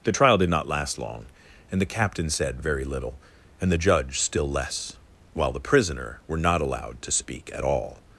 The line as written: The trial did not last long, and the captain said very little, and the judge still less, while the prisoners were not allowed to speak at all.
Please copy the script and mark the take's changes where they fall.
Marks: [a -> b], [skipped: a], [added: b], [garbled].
The trial did not last long, and the captain said very little, and the judge still less, while the [prisoners -> prisoner] were not allowed to speak at all.